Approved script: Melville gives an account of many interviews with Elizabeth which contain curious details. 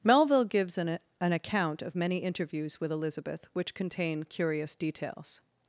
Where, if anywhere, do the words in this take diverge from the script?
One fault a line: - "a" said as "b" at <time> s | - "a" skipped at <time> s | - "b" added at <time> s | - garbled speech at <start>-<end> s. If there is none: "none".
- "an" added at 1.2 s